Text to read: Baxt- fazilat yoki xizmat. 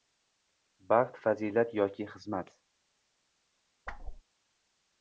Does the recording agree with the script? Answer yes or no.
yes